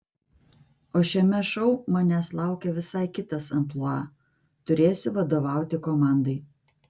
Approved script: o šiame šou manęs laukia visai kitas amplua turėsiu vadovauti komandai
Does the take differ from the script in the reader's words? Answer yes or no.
no